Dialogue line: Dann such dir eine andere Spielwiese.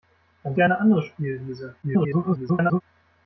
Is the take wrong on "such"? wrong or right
wrong